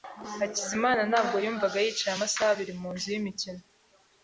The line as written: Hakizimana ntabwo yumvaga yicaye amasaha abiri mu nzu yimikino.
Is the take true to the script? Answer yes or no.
yes